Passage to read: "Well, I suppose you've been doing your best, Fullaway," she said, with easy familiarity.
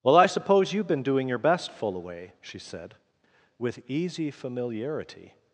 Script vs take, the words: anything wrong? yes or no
no